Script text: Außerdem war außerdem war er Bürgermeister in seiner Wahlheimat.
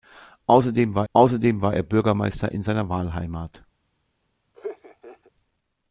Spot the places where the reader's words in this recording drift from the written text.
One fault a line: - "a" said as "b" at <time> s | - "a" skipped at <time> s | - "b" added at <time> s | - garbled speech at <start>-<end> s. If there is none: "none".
none